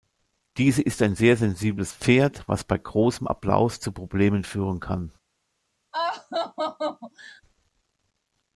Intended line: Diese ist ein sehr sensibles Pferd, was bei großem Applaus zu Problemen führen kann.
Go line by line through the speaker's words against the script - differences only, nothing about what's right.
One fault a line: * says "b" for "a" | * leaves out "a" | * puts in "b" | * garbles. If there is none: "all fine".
all fine